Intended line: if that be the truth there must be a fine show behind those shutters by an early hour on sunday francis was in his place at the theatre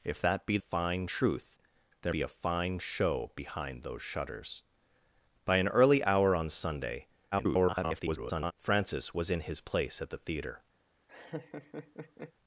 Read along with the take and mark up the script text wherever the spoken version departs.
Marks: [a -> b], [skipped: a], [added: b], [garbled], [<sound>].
if that be [the -> fine] truth there [skipped: must] be a fine show behind those shutters by an early hour on sunday [garbled] francis was in his place at the theatre [laugh]